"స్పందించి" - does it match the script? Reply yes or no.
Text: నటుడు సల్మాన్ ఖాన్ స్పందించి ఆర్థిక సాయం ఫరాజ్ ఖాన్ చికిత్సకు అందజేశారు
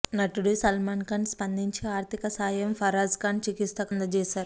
yes